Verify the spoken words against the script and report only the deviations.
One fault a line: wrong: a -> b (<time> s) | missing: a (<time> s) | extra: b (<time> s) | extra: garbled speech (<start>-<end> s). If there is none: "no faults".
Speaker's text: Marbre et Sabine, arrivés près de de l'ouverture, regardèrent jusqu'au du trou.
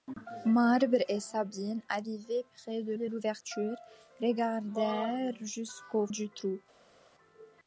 no faults